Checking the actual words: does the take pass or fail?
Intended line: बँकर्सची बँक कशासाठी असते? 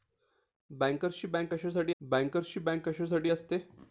fail